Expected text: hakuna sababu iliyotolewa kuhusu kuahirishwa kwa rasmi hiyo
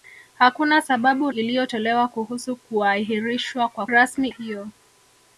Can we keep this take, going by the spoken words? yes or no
yes